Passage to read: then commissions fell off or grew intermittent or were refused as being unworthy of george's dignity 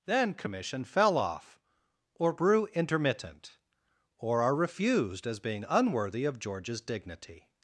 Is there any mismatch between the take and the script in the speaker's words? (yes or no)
yes